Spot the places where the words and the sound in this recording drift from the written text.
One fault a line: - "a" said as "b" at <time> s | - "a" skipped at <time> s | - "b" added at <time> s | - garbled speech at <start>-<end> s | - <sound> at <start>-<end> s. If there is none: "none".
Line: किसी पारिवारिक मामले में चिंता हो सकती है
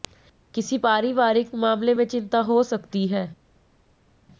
none